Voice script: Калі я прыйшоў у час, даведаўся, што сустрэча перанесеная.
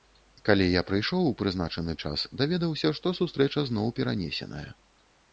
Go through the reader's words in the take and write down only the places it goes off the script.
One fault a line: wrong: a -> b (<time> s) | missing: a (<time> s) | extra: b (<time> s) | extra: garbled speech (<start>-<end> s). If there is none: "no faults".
extra: прызначаны (1.4 s)
extra: зноў (3.7 s)